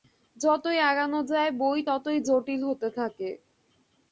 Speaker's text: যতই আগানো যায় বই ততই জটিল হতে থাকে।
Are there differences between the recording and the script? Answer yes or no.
no